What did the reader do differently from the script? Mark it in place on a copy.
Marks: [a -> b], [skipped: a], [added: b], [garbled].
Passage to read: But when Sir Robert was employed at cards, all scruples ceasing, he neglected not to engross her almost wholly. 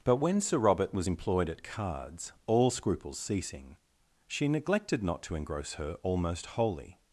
But when Sir Robert was employed at cards, all scruples ceasing, [he -> she] neglected not to engross her almost wholly.